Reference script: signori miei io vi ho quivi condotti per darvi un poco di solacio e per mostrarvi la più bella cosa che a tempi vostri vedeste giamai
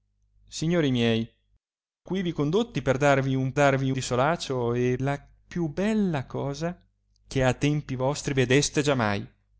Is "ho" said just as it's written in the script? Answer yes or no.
no